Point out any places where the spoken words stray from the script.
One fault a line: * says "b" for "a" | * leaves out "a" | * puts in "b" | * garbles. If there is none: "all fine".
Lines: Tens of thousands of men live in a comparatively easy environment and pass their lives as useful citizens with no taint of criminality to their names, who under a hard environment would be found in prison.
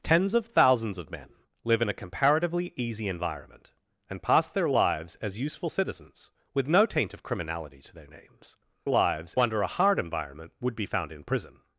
* says "lives" for "who"